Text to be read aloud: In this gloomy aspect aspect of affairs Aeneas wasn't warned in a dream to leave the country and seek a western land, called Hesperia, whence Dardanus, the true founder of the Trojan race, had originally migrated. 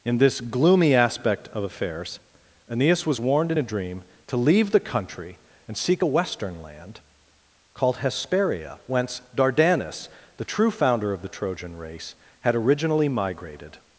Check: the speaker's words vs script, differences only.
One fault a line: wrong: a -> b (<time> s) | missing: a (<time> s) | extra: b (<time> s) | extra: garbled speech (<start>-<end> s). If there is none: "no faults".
missing: aspect (1.5 s)
wrong: wasn't -> was (3.0 s)